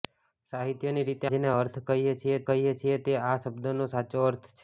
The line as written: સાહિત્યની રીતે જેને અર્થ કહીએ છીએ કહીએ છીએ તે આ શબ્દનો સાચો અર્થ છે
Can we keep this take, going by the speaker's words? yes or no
yes